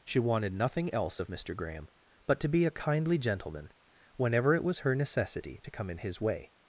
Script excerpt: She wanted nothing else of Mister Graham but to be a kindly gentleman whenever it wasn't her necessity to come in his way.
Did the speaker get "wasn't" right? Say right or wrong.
wrong